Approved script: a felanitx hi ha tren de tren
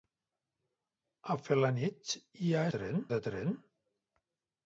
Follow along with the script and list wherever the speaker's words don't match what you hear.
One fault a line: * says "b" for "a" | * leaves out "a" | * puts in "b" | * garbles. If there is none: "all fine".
all fine